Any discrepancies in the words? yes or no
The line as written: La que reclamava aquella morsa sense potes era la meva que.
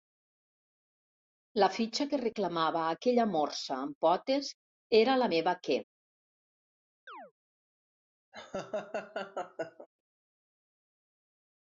yes